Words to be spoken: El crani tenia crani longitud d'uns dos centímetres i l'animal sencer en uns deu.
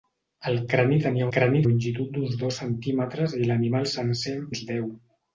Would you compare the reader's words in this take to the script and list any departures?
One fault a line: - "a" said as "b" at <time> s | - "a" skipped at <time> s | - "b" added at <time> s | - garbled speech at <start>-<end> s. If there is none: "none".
none